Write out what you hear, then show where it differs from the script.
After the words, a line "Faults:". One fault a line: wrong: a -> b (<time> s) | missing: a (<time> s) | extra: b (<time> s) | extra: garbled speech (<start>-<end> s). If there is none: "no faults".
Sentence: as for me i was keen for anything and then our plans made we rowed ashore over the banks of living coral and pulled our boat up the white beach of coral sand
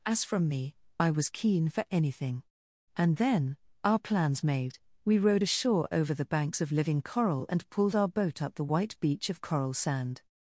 as from me i was keen for anything and then our plans made we rowed ashore over the banks of living coral and pulled our boat up the white beach of coral sand
Faults:
wrong: for -> from (0.2 s)